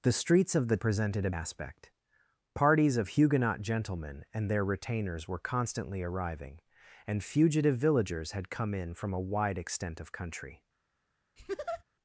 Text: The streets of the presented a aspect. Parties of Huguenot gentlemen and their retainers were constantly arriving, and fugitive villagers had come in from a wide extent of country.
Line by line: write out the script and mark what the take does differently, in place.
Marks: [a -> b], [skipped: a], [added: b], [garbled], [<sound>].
The streets of the presented a aspect. Parties of Huguenot gentlemen and their retainers were constantly arriving, and fugitive villagers had come in from a wide extent of country. [laugh]